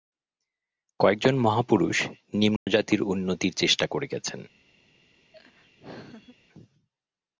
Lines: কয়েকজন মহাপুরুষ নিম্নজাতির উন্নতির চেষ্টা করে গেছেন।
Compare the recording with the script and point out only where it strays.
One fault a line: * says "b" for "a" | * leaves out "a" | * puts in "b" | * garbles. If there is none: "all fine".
all fine